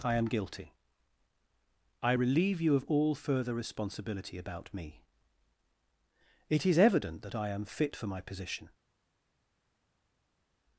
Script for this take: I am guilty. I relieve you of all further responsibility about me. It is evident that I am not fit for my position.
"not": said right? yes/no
no